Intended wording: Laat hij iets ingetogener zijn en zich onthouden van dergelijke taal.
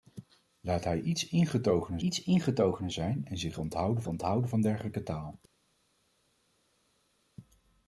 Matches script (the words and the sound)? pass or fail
fail